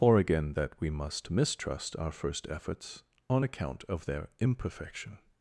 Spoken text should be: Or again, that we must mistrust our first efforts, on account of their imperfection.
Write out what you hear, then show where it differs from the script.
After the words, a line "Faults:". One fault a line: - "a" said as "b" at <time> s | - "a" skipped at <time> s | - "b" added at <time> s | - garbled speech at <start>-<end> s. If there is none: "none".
Or again, that we must mistrust our first efforts, on account of their imperfection.
Faults:
none